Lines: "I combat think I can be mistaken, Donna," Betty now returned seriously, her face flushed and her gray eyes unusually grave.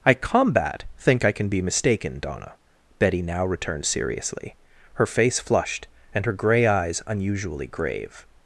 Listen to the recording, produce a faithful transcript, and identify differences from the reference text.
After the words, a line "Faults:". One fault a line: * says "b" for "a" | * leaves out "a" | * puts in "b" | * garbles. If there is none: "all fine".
"I combat think I can be mistaken, Donna," Betty now returned seriously, her face flushed and her gray eyes unusually grave.
Faults:
all fine